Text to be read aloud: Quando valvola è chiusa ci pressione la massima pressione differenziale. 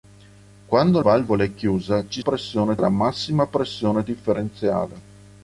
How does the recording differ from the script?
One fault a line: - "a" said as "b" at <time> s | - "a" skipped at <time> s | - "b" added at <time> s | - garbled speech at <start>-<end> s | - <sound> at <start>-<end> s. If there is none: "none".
none